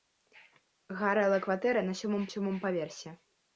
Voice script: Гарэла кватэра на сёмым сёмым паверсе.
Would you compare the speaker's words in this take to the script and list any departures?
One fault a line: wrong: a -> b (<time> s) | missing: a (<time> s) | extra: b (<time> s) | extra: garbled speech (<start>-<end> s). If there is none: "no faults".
no faults